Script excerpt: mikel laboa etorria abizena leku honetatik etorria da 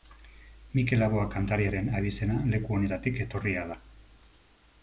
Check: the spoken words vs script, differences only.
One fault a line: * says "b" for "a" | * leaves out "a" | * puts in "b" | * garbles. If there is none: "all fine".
* says "kantariaren" for "etorria"